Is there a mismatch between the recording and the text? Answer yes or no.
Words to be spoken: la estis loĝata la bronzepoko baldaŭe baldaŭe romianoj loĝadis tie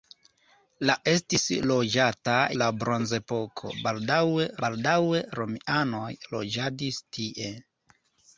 no